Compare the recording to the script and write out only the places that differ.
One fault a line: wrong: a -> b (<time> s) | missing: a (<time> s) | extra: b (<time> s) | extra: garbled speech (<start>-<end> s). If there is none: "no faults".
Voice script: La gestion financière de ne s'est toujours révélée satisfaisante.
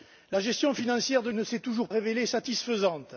no faults